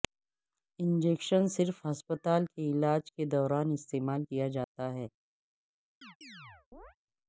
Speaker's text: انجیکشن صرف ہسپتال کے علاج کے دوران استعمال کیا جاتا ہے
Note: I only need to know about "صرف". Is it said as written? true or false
true